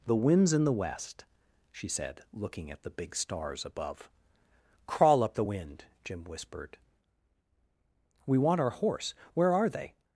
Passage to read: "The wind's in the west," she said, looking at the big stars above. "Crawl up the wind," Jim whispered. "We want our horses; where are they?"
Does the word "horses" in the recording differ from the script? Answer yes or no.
yes